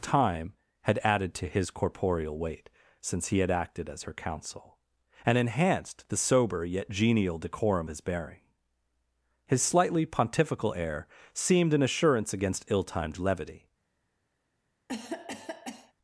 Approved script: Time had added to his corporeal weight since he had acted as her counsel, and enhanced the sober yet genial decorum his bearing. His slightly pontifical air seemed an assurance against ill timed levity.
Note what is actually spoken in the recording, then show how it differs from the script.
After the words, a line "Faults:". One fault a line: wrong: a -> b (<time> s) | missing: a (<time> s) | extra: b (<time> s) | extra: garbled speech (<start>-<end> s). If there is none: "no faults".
Time had added to his corporeal weight since he had acted as her counsel, and enhanced the sober yet genial decorum his bearing. His slightly pontifical air seemed an assurance against ill timed levity.
Faults:
no faults